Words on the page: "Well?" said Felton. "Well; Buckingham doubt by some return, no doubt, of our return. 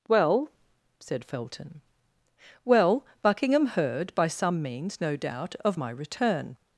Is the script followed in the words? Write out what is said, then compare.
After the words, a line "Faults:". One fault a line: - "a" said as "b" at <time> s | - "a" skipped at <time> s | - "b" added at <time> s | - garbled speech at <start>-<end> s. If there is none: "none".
"Well?" said Felton. "Well; Buckingham heard by some means, no doubt, of my return.
Faults:
- "doubt" said as "heard" at 3.7 s
- "return" said as "means" at 4.6 s
- "our" said as "my" at 5.7 s